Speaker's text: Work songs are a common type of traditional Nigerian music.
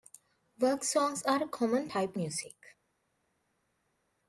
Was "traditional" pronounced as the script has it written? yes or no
no